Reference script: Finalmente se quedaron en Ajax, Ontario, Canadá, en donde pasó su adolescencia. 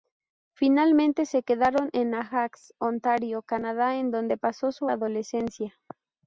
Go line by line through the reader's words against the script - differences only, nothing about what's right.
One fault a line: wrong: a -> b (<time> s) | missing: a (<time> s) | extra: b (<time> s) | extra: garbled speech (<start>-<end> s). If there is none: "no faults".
no faults